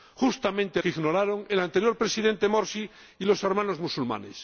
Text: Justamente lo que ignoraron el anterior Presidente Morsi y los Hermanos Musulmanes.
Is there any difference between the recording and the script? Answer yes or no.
yes